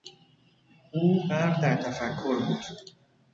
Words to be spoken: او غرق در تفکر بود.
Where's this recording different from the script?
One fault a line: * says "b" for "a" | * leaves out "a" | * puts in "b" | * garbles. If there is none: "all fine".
all fine